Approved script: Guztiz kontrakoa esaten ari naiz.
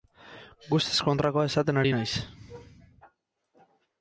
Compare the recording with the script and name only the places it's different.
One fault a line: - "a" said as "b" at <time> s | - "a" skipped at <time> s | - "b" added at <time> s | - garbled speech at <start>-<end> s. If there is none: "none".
none